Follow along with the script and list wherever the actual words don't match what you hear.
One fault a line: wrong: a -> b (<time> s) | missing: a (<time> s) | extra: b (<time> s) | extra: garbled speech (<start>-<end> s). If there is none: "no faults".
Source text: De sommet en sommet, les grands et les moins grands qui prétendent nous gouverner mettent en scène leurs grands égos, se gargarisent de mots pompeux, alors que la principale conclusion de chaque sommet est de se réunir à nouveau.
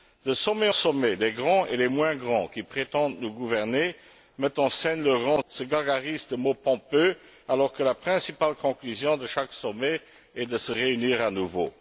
missing: en (0.7 s)
missing: égos (5.4 s)